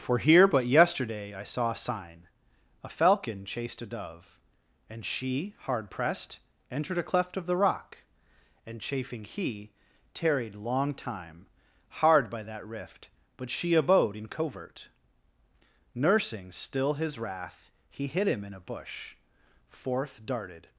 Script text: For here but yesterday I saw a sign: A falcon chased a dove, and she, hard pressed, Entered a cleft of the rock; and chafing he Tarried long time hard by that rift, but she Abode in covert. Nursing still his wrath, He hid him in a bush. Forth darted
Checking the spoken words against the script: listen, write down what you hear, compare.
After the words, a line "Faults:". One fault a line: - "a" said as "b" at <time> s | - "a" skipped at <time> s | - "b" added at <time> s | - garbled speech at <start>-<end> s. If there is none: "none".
For here but yesterday I saw a sign: A falcon chased a dove, and she, hard pressed, Entered a cleft of the rock; and chafing he Tarried long time hard by that rift, but she Abode in covert. Nursing still his wrath, He hid him in a bush. Forth darted
Faults:
none